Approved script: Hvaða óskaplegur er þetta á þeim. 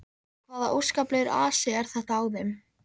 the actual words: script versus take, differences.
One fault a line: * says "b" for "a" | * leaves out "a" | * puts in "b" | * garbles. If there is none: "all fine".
* puts in "asi"